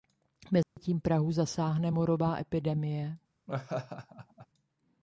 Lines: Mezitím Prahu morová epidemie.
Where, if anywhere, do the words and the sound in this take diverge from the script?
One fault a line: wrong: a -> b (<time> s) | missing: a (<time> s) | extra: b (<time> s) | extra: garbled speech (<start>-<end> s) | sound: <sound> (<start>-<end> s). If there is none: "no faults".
sound: dropout (0.6-0.8 s)
extra: zasáhne (1.3 s)
sound: laugh (3.5-4.5 s)